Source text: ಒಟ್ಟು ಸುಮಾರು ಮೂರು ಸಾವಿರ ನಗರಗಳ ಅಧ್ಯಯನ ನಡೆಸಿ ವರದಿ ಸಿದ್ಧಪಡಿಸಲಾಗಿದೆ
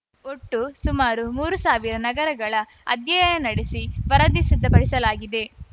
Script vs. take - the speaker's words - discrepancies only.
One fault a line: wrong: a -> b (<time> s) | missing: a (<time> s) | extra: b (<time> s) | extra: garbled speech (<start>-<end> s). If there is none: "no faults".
no faults